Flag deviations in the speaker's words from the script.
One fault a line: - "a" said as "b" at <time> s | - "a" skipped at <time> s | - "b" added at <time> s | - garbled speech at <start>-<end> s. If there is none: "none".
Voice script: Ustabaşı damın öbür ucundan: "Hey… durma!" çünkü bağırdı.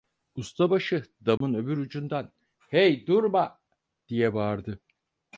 - "çünkü" said as "diye" at 4.1 s